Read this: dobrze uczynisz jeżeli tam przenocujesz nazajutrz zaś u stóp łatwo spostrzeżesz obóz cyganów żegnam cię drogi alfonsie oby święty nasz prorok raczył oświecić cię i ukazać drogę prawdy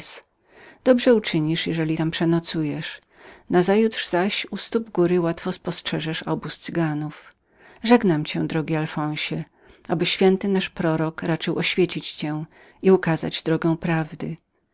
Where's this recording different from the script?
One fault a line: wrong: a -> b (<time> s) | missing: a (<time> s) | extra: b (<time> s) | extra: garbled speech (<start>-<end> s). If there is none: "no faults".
extra: góry (4.9 s)